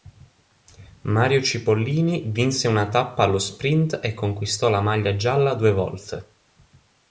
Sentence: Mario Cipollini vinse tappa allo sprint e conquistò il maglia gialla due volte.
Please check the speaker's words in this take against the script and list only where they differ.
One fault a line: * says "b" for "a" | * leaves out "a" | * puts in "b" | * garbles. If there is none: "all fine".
* puts in "una"
* says "la" for "il"